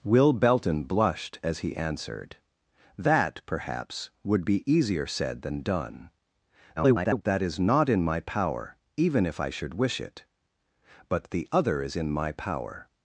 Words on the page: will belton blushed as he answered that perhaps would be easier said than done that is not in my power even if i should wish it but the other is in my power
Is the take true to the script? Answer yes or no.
no